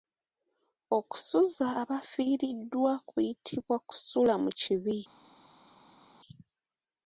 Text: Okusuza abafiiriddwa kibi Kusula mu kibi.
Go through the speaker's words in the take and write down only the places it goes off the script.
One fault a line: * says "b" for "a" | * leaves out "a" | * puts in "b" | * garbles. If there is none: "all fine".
* says "kuyitibwa" for "kibi"